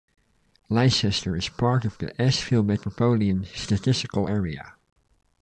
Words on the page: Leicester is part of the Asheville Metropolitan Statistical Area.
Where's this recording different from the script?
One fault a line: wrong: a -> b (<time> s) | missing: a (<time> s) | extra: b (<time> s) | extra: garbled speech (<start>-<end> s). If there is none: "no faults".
no faults